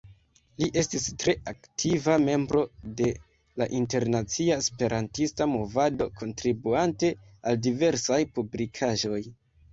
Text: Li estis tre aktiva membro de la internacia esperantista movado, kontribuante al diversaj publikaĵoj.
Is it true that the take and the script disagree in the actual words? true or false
false